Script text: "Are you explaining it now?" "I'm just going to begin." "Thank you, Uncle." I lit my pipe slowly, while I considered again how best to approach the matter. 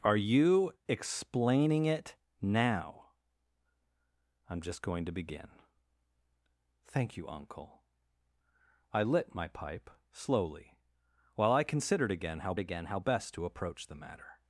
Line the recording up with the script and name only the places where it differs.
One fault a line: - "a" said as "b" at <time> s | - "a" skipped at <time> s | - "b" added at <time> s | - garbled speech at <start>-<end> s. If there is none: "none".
- "again how" added at 12.6 s